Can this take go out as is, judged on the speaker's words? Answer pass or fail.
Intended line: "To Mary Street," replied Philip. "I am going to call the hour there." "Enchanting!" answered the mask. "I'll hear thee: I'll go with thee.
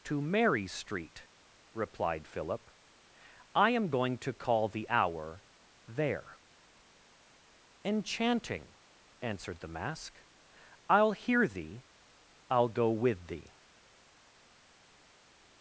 pass